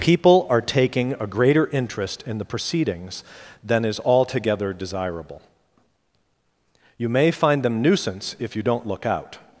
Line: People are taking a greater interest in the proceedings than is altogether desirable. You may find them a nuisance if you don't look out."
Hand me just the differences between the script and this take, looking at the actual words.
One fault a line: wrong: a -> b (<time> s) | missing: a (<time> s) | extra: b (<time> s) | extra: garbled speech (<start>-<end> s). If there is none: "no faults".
missing: a (7.8 s)